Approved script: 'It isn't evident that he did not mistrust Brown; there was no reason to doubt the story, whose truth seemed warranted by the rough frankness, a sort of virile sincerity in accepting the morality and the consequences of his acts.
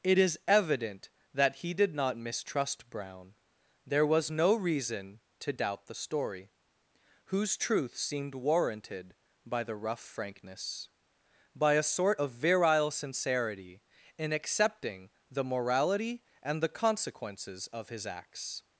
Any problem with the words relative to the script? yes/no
yes